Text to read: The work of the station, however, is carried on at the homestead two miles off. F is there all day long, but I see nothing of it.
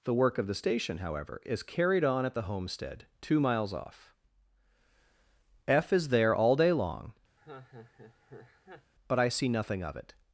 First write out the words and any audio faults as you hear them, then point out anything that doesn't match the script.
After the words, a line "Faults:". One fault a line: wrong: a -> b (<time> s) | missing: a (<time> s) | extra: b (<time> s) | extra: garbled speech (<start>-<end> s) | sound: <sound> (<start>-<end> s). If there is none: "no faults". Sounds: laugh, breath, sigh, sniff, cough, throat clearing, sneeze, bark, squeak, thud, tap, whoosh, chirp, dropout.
The work of the station, however, is carried on at the homestead two miles off. F is there all day long, but I see nothing of it.
Faults:
sound: laugh (7.4-8.9 s)